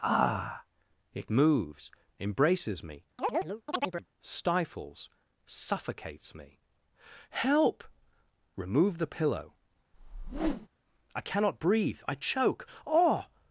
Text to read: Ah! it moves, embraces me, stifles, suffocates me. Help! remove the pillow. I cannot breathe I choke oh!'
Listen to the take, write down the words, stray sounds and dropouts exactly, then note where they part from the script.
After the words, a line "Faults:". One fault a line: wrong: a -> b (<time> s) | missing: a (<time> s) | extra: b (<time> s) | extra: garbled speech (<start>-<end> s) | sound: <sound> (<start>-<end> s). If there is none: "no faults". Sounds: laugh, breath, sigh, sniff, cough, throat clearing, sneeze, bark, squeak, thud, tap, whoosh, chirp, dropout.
Ah! it moves, embraces me, stifles, suffocates me. Help! remove the pillow. I cannot breathe I choke oh!'
Faults:
sound: chirp (3.2-4.1 s)
sound: whoosh (9.9-10.7 s)